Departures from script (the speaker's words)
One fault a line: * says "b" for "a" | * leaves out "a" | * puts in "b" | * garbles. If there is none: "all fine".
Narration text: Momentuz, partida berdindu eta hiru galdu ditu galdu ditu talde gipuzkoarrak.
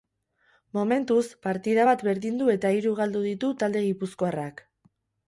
* puts in "bat"
* leaves out "galdu ditu"